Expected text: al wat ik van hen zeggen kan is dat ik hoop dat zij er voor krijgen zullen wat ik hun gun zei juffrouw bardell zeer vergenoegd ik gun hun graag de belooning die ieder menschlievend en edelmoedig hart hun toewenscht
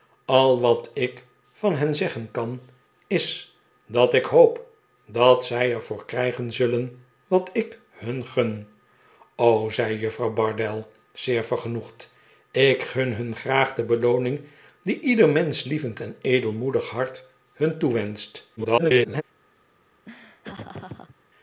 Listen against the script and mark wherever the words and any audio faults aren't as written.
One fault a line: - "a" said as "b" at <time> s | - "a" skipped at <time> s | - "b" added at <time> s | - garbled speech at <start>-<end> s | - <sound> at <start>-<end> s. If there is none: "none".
- garbled speech at 18.6-19.2 s
- laugh at 20.1-21.2 s